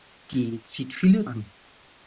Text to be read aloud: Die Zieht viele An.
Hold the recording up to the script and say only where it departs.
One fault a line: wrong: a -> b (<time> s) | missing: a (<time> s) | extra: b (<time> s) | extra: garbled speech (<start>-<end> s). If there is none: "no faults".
no faults